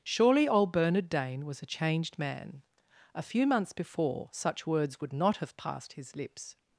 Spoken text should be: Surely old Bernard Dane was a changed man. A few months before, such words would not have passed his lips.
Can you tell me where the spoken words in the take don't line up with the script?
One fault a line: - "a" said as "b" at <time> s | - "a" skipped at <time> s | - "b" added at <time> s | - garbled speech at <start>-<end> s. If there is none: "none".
none